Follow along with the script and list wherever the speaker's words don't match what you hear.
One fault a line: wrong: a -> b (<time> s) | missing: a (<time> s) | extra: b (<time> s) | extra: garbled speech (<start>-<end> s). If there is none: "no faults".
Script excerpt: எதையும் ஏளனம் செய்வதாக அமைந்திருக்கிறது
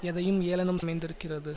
missing: செய்வதாக (0.8 s)